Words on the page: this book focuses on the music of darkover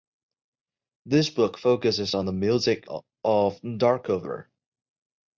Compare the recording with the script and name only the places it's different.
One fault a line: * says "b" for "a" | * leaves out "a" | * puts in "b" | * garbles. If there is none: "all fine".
all fine